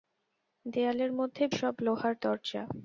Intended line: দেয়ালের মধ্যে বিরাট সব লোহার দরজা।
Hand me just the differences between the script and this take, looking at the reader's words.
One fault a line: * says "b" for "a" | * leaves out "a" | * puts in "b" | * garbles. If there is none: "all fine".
* leaves out "বিরাট"